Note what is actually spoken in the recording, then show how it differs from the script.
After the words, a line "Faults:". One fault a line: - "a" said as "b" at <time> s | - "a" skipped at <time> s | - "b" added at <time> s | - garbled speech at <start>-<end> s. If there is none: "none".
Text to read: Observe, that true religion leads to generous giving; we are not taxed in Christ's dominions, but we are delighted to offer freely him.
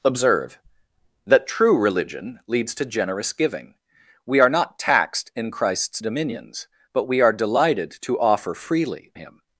Observe, that true religion leads to generous giving; we are not taxed in Christ's dominions, but we are delighted to offer freely him.
Faults:
none